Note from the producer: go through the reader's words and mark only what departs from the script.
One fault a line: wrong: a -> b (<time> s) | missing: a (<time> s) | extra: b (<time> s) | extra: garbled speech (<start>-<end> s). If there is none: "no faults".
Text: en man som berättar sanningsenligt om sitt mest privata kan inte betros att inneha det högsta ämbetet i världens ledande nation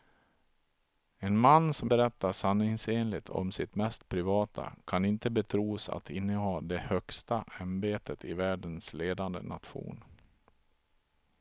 no faults